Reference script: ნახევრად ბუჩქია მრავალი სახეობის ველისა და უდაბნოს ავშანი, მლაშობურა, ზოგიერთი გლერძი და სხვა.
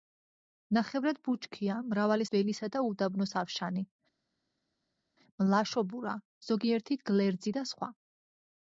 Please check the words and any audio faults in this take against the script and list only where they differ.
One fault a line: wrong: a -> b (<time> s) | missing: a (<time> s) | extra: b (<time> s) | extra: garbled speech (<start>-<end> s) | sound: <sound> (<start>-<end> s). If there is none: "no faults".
missing: სახეობის (2.2 s)